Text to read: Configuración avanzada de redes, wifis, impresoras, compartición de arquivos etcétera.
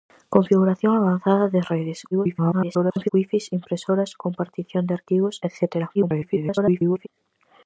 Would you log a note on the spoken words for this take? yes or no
yes